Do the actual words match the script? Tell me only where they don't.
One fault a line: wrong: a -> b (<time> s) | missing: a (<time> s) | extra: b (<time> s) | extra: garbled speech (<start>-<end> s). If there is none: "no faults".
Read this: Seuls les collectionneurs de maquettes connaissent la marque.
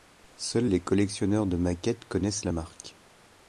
no faults